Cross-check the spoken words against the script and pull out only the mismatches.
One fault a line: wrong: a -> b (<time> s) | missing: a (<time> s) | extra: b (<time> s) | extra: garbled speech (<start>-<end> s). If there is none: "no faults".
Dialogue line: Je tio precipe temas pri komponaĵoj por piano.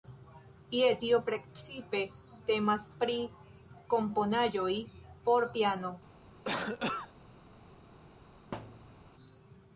no faults